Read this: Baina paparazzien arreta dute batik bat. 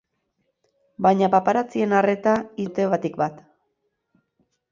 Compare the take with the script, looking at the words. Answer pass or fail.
pass